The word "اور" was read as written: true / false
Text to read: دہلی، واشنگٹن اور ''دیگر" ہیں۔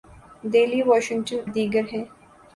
false